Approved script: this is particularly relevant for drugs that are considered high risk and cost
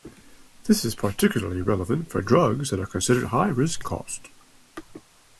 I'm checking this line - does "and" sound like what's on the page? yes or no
no